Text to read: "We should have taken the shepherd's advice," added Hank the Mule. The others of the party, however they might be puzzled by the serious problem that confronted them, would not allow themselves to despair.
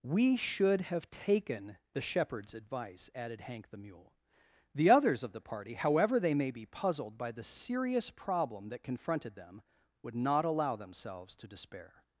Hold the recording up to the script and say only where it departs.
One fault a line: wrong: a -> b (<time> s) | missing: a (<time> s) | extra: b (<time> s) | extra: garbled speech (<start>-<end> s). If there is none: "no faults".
wrong: might -> may (6.3 s)